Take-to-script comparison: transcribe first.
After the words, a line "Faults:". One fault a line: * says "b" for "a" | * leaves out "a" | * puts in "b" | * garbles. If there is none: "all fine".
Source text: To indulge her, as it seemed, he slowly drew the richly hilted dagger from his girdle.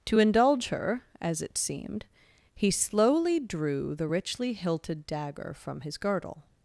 To indulge her, as it seemed, he slowly drew the richly hilted dagger from his girdle.
Faults:
all fine